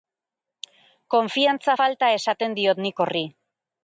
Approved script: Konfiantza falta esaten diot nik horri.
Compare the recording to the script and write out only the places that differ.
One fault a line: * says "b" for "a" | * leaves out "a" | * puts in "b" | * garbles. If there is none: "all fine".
all fine